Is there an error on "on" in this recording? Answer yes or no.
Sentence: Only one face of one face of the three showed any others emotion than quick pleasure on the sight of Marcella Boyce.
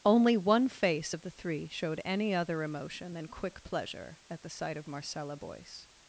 yes